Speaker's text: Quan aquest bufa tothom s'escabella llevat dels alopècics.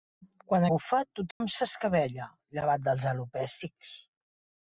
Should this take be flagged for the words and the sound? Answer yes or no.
yes